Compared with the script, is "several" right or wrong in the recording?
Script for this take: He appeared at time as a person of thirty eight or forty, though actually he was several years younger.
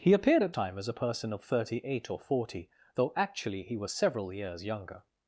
right